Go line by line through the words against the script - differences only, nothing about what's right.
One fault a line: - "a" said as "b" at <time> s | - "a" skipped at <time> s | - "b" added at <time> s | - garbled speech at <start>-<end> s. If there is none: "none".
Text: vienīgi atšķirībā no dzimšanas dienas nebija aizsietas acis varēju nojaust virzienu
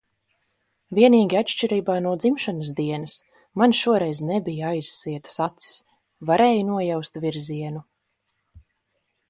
- "man šoreiz" added at 3.6 s